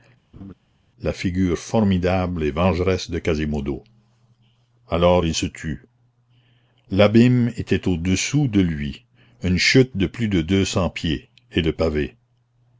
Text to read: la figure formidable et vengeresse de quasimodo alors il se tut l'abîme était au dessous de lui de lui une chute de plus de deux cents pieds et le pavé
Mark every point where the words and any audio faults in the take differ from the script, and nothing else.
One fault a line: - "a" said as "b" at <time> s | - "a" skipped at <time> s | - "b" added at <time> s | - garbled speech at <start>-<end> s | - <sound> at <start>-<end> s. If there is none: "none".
- laugh at 0.3-0.5 s
- "de lui" skipped at 9.0 s